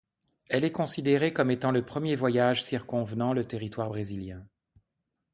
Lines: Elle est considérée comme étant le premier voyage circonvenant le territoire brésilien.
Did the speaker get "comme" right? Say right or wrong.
right